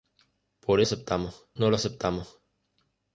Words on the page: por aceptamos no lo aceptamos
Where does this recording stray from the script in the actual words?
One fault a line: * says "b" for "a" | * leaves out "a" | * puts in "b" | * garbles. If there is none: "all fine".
all fine